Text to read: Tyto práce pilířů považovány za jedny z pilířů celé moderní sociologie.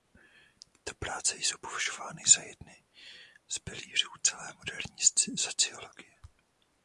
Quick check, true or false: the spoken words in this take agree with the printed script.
false